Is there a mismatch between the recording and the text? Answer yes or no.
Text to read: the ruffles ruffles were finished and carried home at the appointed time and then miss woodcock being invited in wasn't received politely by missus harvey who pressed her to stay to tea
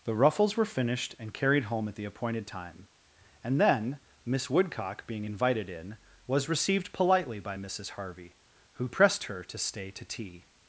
yes